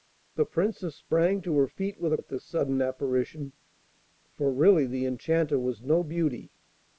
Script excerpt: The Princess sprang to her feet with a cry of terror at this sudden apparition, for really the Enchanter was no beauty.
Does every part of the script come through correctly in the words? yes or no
no